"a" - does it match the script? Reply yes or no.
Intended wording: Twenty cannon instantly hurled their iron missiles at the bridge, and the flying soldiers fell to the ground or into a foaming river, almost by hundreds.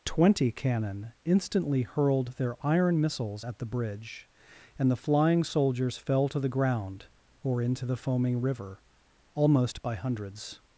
no